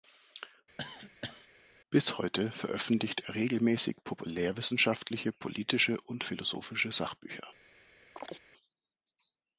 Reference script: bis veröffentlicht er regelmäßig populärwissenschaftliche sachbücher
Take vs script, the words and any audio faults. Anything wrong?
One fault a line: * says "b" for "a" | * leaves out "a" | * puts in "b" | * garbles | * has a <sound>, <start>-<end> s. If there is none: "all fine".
* has a cough, 0.8-1.5 s
* puts in "heute"
* puts in "politische und philosophische"
* has a chirp, 8.2-8.4 s